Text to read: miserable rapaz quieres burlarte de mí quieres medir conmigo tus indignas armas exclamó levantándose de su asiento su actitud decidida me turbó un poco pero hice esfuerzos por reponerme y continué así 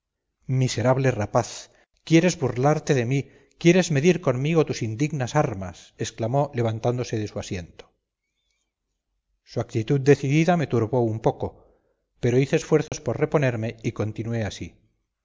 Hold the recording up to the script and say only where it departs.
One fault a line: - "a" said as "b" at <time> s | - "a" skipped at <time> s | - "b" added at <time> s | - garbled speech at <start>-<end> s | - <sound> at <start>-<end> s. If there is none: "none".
- dropout at 12.9-12.9 s